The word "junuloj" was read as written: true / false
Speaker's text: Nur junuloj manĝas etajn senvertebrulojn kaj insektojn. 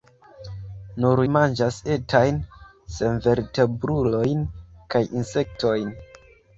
false